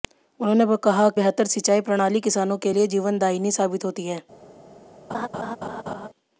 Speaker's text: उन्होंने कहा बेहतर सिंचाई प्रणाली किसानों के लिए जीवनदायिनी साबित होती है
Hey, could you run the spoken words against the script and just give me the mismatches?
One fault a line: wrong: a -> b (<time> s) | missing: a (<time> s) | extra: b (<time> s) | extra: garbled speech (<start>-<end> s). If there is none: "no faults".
no faults